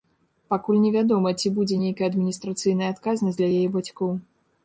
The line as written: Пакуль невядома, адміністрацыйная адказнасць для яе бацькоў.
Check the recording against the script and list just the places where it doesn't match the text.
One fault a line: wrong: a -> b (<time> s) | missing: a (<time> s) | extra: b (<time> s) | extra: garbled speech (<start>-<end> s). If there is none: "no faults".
extra: ці будзе нейкая (1.4 s)